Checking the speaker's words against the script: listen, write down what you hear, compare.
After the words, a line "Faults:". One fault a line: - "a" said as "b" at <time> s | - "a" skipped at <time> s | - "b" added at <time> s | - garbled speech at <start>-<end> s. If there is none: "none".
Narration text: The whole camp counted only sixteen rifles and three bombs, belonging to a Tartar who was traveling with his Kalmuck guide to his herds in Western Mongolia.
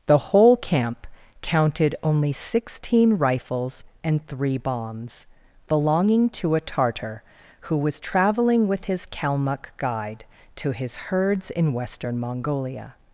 The whole camp counted only sixteen rifles and three bombs, belonging to a Tartar who was traveling with his Kalmuck guide to his herds in Western Mongolia.
Faults:
none